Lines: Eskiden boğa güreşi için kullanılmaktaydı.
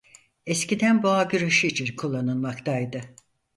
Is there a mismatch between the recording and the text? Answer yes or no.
no